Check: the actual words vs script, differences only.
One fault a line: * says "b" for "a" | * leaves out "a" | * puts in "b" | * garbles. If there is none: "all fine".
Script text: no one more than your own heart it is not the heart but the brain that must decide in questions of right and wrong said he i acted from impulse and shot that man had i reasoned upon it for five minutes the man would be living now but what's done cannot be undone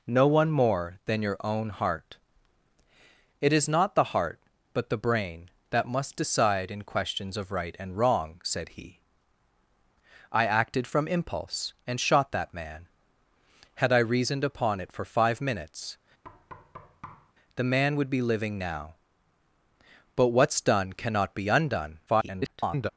* garbles